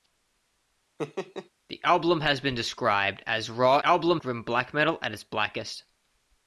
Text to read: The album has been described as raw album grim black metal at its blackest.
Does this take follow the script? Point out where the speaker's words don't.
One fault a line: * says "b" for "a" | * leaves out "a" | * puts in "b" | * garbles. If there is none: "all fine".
all fine